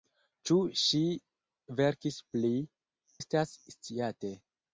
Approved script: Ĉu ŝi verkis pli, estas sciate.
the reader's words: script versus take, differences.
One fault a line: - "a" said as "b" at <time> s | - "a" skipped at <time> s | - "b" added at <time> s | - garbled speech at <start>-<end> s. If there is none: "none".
none